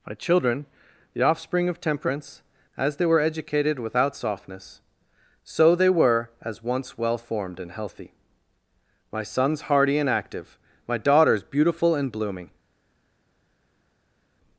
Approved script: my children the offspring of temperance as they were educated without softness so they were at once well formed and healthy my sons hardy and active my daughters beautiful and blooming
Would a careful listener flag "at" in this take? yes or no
yes